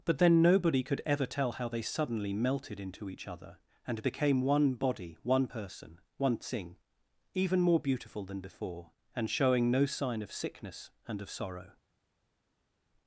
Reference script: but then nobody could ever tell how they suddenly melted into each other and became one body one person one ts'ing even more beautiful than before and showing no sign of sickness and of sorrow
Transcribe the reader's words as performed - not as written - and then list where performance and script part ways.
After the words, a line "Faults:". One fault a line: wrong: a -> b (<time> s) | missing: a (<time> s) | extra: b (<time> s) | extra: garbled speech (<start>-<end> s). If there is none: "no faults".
but then nobody could ever tell how they suddenly melted into each other and became one body one person one ts'ing even more beautiful than before and showing no sign of sickness and of sorrow
Faults:
no faults